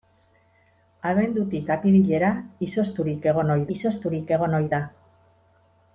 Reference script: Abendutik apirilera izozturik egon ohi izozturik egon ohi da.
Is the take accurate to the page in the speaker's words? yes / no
yes